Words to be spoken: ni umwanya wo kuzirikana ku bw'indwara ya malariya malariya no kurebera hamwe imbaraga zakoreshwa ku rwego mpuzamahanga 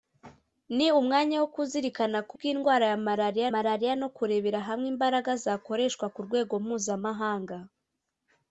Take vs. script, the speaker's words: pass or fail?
pass